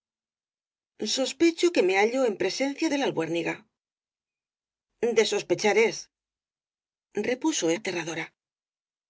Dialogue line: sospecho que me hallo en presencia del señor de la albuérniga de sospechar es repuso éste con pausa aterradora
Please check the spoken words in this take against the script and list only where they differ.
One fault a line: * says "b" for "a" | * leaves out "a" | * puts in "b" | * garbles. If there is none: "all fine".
* leaves out "del señor"
* leaves out "éste con pausa"